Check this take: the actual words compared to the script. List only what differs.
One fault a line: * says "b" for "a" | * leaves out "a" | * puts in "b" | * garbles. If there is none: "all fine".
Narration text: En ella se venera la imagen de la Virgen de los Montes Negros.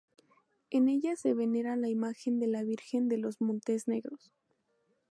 all fine